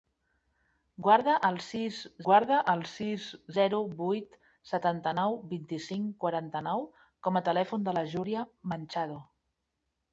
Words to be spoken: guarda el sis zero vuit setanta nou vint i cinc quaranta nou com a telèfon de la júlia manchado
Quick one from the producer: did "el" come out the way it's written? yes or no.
yes